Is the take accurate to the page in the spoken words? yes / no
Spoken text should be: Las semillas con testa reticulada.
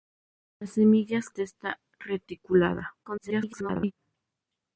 no